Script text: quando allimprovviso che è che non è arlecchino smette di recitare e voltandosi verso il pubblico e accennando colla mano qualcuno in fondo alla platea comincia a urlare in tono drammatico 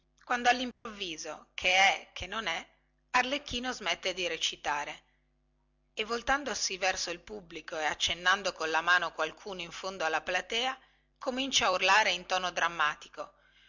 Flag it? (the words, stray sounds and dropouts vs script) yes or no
yes